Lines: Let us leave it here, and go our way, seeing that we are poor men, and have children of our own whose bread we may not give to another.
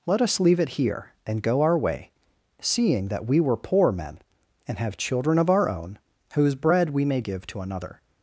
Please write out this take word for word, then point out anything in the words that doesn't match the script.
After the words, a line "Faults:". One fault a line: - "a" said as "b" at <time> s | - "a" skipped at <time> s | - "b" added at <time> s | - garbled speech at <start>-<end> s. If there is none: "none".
Let us leave it here, and go our way, seeing that we were poor men, and have children of our own whose bread we may give to another.
Faults:
- "are" said as "were" at 3.4 s
- "not" skipped at 7.2 s